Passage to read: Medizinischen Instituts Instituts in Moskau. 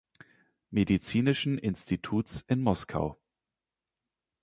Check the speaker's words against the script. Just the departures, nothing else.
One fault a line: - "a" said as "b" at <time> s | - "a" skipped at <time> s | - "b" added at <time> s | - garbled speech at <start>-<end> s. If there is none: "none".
- "Instituts" skipped at 2.4 s